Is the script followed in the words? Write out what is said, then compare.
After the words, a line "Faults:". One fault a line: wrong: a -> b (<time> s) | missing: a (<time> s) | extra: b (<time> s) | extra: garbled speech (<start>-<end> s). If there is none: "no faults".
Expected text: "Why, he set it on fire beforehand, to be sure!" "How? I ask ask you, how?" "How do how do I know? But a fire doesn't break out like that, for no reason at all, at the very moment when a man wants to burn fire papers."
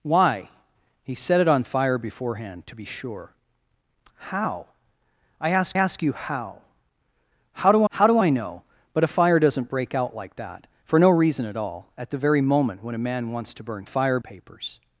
"Why, he set it on fire beforehand, to be sure!" "How? I ask ask you, how?" "How do how do I know? But a fire doesn't break out like that, for no reason at all, at the very moment when a man wants to burn fire papers."
Faults:
no faults